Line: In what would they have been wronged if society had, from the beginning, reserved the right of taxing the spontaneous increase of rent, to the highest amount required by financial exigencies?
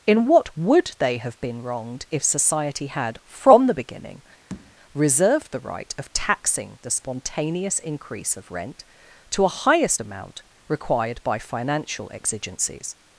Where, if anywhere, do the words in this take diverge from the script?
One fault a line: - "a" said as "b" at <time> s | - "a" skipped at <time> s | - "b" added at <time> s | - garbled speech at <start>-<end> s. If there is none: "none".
- "the" said as "a" at 9.4 s